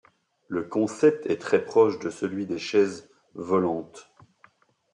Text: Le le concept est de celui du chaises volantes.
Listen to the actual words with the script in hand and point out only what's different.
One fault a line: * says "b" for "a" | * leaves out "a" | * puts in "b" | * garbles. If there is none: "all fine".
* leaves out "le"
* puts in "très proche"
* says "des" for "du"